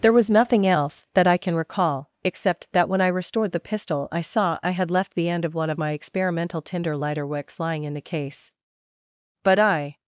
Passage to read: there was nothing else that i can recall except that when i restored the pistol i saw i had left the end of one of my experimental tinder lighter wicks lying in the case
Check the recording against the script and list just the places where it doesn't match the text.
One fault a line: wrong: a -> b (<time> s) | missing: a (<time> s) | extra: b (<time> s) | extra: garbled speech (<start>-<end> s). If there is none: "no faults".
extra: but i (9.4 s)